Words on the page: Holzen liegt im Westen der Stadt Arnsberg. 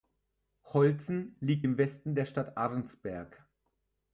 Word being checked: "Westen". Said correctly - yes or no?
yes